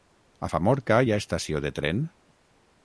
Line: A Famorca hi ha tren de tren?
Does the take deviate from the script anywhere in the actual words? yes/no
yes